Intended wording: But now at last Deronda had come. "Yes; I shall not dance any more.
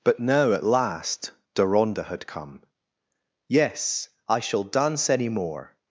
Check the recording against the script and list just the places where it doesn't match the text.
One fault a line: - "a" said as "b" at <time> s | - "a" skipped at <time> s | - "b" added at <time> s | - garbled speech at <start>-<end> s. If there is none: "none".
- "not" skipped at 4.6 s